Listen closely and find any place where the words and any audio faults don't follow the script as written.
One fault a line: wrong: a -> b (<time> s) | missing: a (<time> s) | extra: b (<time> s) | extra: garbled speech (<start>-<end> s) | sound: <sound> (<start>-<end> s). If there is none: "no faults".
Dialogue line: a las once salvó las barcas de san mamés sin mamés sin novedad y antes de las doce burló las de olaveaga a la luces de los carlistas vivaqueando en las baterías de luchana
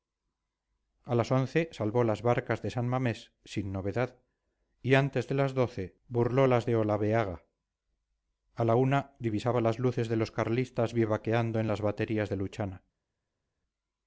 missing: mamés sin (3.7 s)
extra: una divisaba las (8.8 s)